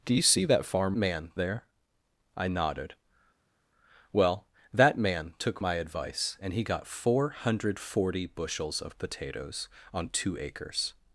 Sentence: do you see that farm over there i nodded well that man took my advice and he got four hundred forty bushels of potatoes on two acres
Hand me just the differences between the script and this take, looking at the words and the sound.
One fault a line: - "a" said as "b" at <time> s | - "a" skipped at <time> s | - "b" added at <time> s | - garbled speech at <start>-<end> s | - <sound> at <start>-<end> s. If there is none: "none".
- "over" said as "man" at 1.0 s